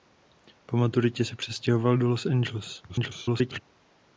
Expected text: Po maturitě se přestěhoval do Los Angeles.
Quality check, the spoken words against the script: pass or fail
fail